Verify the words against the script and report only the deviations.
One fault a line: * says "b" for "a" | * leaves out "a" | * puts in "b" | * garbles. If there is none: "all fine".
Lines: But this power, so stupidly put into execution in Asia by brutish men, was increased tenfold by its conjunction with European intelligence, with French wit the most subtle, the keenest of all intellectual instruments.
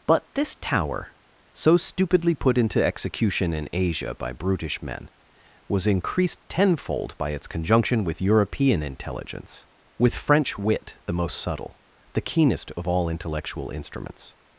* says "tower" for "power"